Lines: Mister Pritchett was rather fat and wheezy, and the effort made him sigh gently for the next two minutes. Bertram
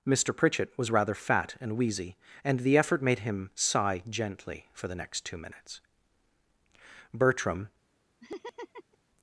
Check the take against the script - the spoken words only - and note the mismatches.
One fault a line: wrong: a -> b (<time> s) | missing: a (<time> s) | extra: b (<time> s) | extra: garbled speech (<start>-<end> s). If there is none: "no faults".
no faults